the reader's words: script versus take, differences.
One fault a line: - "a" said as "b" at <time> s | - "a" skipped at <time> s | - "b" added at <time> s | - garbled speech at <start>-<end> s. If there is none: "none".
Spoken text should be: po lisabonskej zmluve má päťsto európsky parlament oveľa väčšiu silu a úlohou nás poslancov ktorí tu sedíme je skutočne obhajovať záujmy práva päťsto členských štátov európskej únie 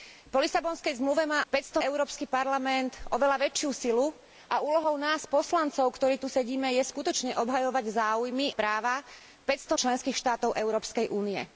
none